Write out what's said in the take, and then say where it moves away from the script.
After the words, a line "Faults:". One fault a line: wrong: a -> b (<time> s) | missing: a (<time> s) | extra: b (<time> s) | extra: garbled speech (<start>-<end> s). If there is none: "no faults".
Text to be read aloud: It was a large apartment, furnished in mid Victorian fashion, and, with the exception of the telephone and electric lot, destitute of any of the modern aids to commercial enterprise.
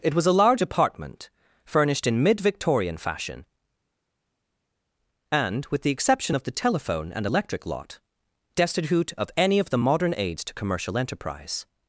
It was a large apartment, furnished in mid Victorian fashion, and, with the exception of the telephone and electric lot, destitute of any of the modern aids to commercial enterprise.
Faults:
no faults